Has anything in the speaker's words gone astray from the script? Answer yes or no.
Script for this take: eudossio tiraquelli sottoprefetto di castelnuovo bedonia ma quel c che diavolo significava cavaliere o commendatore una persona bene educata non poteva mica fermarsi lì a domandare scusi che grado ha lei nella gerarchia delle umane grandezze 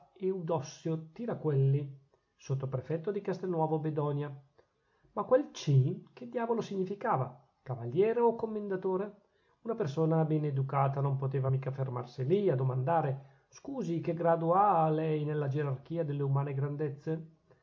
no